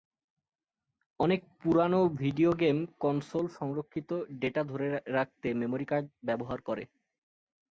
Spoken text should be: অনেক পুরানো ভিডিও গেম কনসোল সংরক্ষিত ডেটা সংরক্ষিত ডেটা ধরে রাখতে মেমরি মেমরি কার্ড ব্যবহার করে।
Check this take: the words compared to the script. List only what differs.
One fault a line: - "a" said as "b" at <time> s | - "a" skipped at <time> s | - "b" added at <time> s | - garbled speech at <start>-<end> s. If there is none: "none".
- "সংরক্ষিত ডেটা" skipped at 4.6 s
- "মেমরি" skipped at 5.8 s